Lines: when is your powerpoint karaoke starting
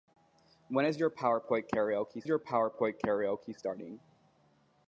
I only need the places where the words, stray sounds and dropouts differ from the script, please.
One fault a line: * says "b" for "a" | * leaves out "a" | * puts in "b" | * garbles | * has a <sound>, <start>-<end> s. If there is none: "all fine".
* puts in "your powerpoint karaoke"